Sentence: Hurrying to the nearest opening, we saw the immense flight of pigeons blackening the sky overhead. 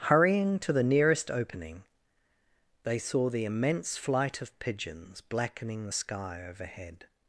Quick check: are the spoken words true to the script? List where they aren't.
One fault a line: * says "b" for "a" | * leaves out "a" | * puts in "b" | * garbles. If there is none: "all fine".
* says "they" for "we"